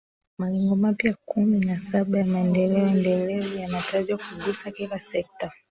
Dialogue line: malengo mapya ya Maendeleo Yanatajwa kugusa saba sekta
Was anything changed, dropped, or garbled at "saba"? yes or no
yes